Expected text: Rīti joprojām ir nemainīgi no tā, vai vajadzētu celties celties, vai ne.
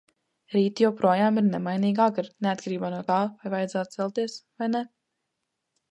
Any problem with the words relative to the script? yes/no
yes